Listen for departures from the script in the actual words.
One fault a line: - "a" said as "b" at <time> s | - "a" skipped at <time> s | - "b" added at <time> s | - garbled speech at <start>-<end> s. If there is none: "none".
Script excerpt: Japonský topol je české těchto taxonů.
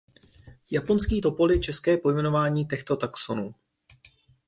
- "pojmenování" added at 1.9 s